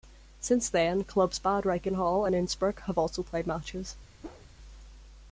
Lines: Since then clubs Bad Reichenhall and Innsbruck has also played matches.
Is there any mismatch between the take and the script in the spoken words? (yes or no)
yes